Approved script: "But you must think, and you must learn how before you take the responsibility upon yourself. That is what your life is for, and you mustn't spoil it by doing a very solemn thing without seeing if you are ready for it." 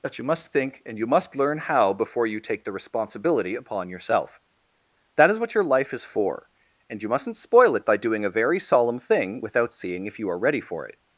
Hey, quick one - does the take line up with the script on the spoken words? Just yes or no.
yes